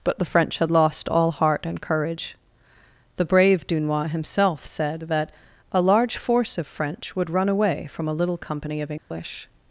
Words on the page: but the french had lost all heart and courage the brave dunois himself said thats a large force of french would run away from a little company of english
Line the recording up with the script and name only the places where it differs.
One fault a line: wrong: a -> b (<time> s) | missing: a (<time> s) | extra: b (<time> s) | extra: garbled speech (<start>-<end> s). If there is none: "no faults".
wrong: thats -> that (5.0 s)